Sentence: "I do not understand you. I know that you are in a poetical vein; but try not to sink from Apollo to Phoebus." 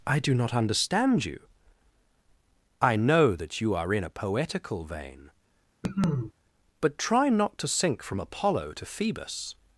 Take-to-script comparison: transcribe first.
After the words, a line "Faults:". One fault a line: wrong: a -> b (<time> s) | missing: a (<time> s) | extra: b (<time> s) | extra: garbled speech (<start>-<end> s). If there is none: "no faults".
"I do not understand you. I know that you are in a poetical vein; but try not to sink from Apollo to Phoebus."
Faults:
no faults